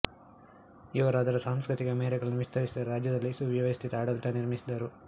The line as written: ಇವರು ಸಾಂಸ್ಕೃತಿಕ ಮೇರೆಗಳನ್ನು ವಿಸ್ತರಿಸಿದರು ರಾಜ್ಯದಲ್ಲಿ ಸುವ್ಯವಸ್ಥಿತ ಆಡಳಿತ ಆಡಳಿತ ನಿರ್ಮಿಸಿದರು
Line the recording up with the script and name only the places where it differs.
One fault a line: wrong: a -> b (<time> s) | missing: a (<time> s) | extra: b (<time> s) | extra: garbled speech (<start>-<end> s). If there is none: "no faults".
extra: ಅದರ (1.2 s)
missing: ಆಡಳಿತ (4.4 s)